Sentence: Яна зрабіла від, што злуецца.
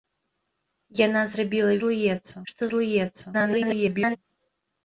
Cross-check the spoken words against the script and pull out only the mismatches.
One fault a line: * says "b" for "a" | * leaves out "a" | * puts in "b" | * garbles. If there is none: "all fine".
* says "злуецца" for "від"
* garbles